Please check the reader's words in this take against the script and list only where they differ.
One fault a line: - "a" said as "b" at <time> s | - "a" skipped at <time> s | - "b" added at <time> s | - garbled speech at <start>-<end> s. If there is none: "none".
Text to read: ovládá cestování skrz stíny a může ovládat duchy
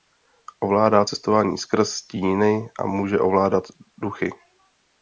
none